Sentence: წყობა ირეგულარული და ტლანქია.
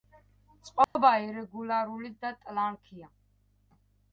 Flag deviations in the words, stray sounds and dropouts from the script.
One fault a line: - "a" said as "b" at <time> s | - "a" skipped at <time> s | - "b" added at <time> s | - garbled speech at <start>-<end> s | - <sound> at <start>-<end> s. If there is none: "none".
- dropout at 0.8-1.0 s